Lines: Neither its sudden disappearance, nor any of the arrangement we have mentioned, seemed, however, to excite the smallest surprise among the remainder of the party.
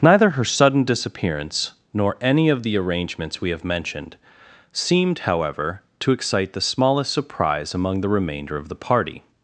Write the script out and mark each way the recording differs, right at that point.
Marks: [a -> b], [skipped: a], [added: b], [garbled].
Neither [its -> her] sudden disappearance, nor any of the [arrangement -> arrangements] we have mentioned, seemed, however, to excite the smallest surprise among the remainder of the party.